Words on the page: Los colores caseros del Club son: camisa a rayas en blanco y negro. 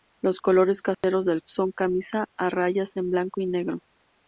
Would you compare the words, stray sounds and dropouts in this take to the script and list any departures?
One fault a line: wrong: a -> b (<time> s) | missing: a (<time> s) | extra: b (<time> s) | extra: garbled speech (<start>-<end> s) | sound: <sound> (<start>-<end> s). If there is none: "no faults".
sound: dropout (0.9-1.0 s)
missing: Club (1.4 s)